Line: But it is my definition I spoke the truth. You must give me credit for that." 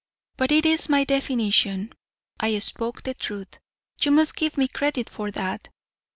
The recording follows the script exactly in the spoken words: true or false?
true